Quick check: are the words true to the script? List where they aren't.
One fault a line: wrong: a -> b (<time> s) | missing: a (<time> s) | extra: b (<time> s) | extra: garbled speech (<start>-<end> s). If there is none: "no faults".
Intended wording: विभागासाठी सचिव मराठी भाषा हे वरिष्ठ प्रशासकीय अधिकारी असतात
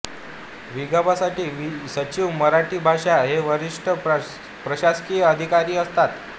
no faults